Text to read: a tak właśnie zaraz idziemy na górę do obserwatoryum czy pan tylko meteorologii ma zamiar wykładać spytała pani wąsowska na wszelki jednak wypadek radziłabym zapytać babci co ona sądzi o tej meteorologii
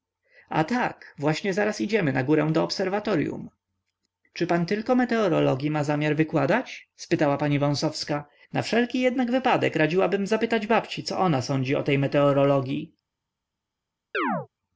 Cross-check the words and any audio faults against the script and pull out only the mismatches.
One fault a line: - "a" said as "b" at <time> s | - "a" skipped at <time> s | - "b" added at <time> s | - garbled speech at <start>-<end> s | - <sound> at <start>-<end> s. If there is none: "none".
- chirp at 14.1-14.5 s